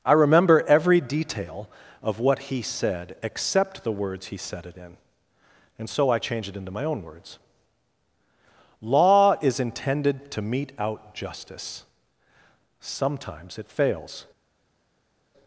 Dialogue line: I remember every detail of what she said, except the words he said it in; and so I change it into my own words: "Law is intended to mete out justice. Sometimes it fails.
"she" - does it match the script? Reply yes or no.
no